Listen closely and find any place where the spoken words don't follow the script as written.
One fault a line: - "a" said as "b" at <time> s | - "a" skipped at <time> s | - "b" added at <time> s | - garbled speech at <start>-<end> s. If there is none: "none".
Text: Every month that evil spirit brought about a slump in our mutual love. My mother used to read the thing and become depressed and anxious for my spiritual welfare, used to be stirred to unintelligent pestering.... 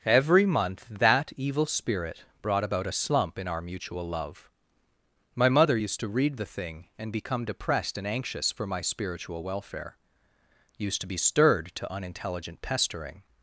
none